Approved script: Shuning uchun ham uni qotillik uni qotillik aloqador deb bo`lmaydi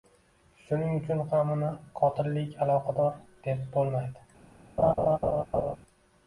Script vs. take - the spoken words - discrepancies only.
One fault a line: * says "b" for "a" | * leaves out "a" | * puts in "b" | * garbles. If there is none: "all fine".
* leaves out "uni qotillik"